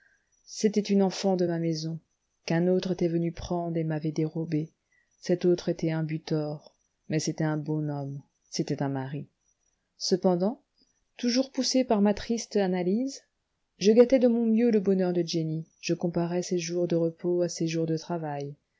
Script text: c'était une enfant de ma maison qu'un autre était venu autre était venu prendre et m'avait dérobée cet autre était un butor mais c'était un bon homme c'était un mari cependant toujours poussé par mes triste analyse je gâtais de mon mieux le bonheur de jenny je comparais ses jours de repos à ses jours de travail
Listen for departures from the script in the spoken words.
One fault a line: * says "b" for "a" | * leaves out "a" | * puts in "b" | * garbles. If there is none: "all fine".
* leaves out "autre était venu"
* says "ma" for "mes"